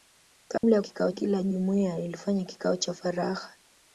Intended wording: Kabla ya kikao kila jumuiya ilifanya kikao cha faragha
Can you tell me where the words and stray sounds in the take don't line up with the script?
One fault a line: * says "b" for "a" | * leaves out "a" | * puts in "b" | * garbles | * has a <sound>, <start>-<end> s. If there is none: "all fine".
* has a dropout, 0.6-0.6 s